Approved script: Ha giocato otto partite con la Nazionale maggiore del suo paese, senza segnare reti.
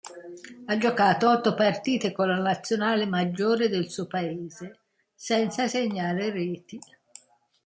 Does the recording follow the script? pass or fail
pass